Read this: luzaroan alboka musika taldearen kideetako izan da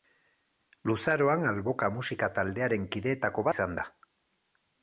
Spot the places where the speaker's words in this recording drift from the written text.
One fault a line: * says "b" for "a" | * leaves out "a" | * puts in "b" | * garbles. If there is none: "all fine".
all fine